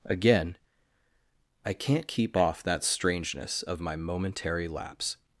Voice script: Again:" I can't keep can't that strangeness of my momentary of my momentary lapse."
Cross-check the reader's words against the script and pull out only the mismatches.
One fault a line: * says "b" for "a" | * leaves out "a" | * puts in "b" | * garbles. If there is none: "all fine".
* says "off" for "can't"
* leaves out "of my momentary"